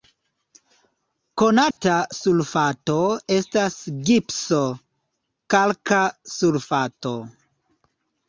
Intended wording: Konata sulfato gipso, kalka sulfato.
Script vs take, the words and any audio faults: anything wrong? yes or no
yes